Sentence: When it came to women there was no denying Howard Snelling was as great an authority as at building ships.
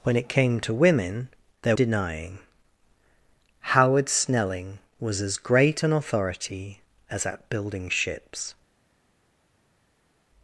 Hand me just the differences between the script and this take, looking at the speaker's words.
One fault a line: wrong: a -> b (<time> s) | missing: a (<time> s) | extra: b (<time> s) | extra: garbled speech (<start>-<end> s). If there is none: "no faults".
missing: was no (1.8 s)